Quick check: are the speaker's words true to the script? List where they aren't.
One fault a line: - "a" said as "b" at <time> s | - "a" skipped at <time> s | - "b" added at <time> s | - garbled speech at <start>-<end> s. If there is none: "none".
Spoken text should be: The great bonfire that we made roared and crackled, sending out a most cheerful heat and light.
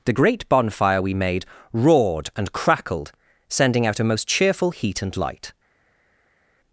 - "that" skipped at 1.0 s